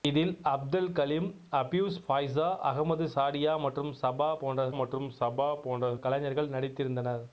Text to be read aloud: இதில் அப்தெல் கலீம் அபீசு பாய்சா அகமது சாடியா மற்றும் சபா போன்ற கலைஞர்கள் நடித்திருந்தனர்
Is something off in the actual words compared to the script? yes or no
yes